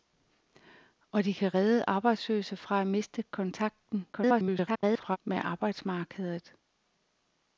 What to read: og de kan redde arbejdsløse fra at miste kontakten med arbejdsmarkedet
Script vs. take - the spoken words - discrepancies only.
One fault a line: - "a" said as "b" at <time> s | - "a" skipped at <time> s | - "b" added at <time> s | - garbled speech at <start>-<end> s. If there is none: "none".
- garbled speech at 4.1-5.2 s